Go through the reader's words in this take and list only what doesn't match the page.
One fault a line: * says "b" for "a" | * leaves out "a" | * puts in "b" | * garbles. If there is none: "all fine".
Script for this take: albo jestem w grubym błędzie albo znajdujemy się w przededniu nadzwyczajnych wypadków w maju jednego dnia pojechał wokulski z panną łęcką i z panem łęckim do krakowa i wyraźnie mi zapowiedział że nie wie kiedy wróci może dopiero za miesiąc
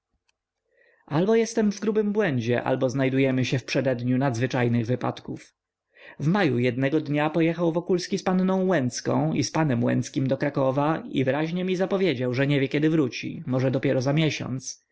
all fine